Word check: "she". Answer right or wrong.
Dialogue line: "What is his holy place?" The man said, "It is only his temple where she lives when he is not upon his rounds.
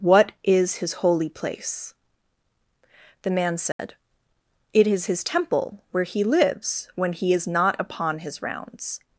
wrong